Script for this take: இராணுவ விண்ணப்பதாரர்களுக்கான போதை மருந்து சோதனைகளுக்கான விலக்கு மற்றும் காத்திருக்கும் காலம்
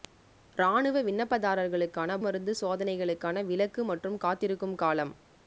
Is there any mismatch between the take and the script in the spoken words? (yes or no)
yes